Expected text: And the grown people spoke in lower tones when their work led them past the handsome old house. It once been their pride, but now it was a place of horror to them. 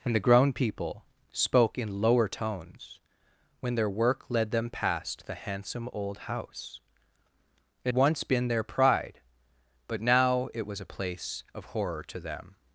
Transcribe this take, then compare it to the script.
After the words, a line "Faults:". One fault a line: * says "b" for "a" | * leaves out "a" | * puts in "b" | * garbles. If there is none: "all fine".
And the grown people spoke in lower tones when their work led them past the handsome old house. It once been their pride, but now it was a place of horror to them.
Faults:
all fine